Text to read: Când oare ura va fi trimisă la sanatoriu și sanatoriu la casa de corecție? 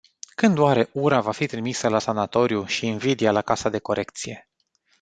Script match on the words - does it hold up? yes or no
no